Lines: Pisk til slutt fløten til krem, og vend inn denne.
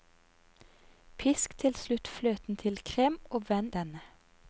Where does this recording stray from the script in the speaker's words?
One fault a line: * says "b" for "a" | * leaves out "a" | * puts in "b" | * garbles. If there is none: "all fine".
* leaves out "inn"